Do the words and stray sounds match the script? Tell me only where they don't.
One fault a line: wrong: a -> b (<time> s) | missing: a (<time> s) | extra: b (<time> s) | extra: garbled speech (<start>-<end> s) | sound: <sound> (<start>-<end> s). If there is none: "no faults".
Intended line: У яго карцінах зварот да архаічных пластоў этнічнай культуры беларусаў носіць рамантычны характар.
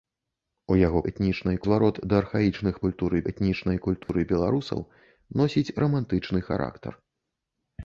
wrong: карцінах -> этнічнай (1.1 s)
wrong: пластоў -> культуры (2.9 s)
sound: dropout (4.0-4.1 s)